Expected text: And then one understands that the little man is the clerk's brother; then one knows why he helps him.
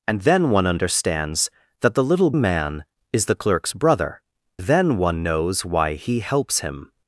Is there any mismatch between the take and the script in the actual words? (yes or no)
no